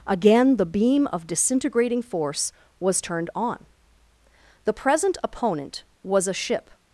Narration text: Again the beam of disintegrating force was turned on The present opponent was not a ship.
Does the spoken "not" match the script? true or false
false